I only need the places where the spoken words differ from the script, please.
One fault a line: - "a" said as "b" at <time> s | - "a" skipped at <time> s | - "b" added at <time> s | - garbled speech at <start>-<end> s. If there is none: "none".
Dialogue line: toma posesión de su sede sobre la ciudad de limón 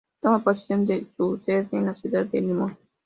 - "sobre" said as "en" at 1.7 s